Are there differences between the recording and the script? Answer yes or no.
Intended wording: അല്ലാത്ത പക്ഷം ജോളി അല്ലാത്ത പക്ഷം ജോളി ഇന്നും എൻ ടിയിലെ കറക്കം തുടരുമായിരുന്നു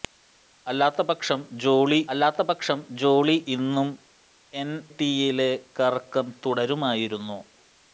no